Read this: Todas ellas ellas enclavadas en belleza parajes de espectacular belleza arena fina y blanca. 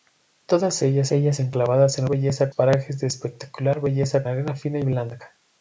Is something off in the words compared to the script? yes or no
no